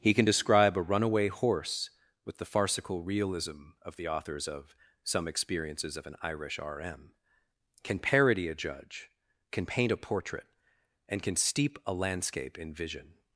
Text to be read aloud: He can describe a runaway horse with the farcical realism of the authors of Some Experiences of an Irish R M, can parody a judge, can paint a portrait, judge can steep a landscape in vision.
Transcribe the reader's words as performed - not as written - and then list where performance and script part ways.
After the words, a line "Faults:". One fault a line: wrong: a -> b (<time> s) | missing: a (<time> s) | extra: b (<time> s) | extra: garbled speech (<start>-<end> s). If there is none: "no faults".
He can describe a runaway horse with the farcical realism of the authors of Some Experiences of an Irish R M, can parody a judge, can paint a portrait, and can steep a landscape in vision.
Faults:
wrong: judge -> and (11.1 s)